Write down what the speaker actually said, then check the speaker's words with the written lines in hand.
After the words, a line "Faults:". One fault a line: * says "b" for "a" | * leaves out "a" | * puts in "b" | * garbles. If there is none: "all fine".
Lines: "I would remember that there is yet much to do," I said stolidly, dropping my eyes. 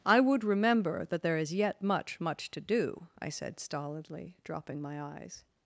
"I would remember that there is yet much much to do," I said stolidly, dropping my eyes.
Faults:
* puts in "much"